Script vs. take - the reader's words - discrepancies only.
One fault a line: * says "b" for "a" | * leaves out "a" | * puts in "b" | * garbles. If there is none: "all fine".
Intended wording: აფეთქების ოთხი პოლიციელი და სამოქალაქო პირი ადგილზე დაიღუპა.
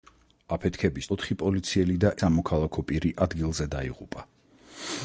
all fine